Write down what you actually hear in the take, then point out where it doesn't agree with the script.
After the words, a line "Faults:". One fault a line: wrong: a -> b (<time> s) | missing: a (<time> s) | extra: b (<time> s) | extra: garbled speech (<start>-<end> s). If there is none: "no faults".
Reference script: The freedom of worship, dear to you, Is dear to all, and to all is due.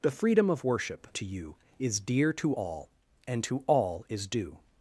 The freedom of worship, to you, Is dear to all, and to all is due.
Faults:
missing: dear (1.1 s)